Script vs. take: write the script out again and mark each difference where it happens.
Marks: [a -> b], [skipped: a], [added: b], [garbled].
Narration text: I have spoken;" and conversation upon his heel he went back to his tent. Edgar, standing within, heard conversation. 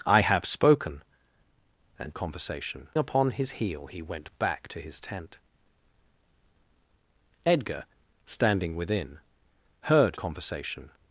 I have spoken;" and conversation upon his heel he went back to his tent. Edgar, standing within, heard conversation.